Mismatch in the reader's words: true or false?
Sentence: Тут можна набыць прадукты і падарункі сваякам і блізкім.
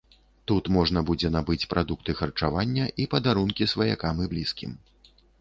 true